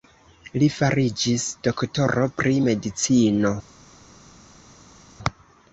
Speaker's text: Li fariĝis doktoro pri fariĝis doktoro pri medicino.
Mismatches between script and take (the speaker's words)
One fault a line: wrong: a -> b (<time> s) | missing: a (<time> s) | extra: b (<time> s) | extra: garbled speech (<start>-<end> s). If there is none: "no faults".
missing: fariĝis doktoro pri (2.6 s)